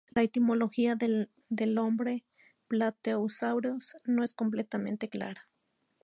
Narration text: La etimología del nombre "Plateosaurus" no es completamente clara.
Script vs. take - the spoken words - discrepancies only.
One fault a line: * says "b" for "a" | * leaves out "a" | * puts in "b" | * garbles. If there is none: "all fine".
all fine